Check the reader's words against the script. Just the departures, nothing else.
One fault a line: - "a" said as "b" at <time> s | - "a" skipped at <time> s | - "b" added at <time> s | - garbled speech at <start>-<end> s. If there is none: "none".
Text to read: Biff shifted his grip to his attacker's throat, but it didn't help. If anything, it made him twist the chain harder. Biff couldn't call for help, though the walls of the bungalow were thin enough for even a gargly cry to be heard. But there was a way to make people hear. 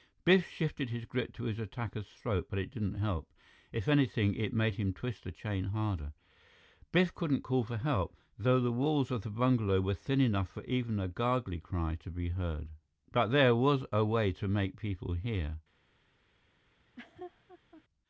none